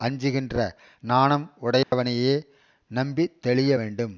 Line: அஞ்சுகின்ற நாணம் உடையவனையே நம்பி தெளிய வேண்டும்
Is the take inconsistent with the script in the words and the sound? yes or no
yes